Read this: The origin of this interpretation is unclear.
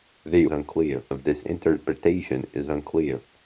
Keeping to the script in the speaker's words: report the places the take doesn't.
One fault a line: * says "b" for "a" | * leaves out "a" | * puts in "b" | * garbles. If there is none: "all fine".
* says "unclear" for "origin"